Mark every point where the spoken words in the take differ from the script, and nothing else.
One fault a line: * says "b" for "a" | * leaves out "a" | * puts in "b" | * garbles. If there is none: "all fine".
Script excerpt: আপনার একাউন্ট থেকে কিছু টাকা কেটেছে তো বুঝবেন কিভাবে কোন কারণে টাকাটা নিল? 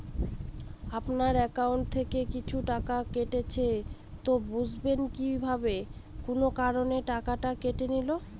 * puts in "কেটে"